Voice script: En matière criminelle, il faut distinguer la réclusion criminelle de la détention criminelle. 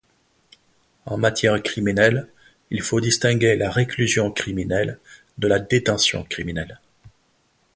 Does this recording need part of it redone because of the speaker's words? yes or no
no